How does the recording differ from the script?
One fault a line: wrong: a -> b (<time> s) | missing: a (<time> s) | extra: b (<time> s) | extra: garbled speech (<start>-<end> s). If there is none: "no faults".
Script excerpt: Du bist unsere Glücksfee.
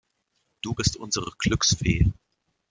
no faults